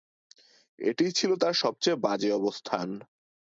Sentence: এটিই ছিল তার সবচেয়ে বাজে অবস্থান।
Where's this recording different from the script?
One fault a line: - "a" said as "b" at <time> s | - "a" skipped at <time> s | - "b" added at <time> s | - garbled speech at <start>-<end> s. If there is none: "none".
none